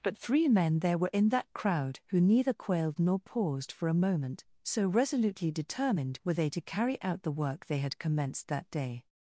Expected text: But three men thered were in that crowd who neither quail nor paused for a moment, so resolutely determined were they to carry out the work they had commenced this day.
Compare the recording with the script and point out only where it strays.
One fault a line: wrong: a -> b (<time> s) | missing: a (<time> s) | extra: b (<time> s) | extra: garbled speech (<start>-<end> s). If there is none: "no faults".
wrong: thered -> there (0.8 s)
wrong: quail -> quailed (2.5 s)
wrong: this -> that (8.5 s)